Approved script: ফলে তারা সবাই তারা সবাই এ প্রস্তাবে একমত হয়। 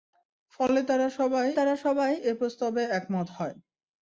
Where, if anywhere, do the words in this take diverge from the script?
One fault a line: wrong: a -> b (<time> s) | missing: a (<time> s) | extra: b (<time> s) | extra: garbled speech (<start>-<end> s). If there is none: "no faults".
no faults